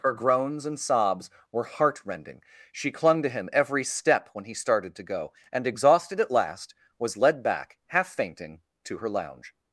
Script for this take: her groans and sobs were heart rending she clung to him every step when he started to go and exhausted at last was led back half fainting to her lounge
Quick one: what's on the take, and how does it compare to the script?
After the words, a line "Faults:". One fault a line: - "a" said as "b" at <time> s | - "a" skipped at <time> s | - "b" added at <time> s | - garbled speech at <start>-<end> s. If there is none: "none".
her groans and sobs were heart rending she clung to him every step when he started to go and exhausted at last was led back half fainting to her lounge
Faults:
none